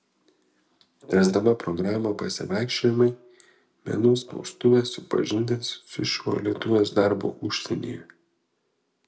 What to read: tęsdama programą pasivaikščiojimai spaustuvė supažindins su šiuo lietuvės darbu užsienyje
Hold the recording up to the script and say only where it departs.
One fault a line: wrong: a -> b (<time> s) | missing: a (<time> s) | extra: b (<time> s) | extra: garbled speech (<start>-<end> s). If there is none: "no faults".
extra: menų (3.9 s)